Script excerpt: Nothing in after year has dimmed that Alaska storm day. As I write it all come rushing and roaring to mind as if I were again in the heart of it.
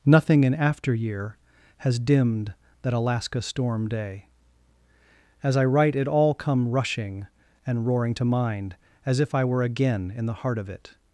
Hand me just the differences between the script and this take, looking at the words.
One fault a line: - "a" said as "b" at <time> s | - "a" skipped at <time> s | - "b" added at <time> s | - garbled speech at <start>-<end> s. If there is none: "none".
none